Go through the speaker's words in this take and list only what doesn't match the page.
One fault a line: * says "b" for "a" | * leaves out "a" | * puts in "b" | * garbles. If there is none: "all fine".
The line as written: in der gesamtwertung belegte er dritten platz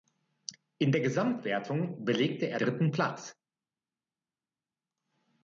all fine